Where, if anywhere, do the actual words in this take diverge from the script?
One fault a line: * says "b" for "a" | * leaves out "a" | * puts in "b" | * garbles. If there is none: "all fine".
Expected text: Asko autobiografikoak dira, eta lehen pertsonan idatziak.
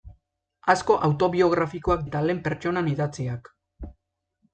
* leaves out "dira"